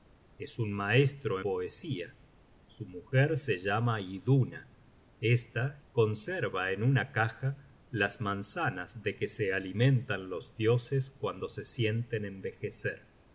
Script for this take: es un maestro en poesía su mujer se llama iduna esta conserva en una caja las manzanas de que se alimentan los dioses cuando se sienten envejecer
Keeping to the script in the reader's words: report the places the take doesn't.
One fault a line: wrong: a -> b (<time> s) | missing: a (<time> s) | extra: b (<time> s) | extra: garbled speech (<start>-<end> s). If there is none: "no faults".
missing: en (1.4 s)